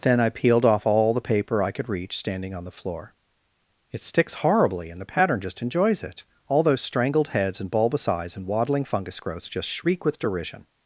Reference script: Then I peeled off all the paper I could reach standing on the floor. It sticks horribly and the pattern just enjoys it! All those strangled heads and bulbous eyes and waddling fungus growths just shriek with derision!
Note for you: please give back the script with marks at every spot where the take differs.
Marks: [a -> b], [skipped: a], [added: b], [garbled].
Then I peeled off all the paper I could reach standing on the floor. It sticks horribly and the pattern just enjoys it! All those strangled heads and bulbous eyes and waddling fungus growths just shriek with derision!